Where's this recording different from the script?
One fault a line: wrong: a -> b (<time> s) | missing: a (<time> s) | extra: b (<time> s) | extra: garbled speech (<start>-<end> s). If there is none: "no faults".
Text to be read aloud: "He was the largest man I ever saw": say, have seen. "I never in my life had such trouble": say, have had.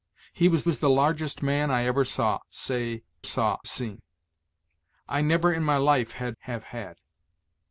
extra: was (0.6 s)
wrong: have -> saw (3.2 s)
missing: such trouble say (6.4 s)